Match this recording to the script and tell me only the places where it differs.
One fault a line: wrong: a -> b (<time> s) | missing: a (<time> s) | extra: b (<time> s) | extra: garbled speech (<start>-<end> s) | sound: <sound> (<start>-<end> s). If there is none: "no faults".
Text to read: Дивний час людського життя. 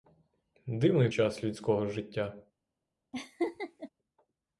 sound: laugh (3.1-3.9 s)